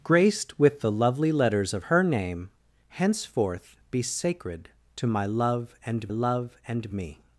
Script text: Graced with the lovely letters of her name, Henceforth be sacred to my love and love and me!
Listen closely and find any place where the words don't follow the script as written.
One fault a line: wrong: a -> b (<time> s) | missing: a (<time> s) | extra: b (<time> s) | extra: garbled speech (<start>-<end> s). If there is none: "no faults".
no faults